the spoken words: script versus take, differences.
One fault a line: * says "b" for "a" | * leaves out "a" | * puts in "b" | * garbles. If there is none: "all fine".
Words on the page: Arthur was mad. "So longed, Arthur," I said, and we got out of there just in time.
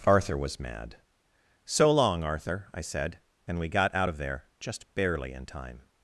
* says "long" for "longed"
* puts in "barely"